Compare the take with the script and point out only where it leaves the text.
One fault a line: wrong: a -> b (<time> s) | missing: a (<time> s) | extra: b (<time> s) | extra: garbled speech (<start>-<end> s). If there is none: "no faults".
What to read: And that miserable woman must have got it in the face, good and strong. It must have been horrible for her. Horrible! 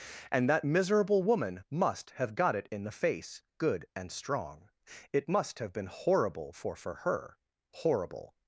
extra: for (6.8 s)